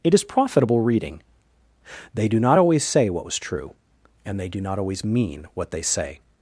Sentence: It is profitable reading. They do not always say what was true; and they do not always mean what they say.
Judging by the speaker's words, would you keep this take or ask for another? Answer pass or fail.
pass